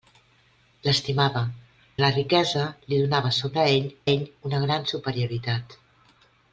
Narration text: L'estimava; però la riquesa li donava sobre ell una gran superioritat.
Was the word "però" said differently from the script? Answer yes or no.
yes